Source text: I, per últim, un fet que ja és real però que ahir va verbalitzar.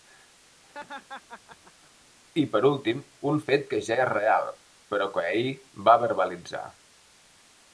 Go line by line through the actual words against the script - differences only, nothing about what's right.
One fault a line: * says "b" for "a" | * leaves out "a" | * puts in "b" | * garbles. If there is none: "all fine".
all fine